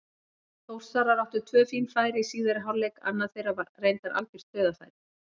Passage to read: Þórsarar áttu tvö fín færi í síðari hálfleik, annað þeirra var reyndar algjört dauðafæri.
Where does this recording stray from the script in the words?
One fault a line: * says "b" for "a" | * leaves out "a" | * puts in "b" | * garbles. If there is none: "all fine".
all fine